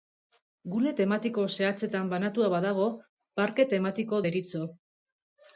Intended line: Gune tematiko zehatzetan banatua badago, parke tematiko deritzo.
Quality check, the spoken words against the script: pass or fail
pass